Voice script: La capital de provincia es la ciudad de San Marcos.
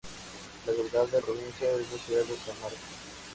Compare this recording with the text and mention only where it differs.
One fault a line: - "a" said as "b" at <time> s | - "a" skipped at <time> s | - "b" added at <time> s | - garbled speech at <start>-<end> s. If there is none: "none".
none